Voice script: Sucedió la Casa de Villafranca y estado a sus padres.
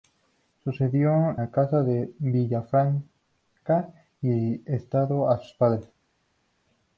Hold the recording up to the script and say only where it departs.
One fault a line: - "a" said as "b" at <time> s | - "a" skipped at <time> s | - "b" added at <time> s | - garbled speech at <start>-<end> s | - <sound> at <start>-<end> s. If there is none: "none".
none